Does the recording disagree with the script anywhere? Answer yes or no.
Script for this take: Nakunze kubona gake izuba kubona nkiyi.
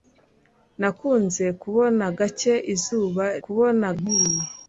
no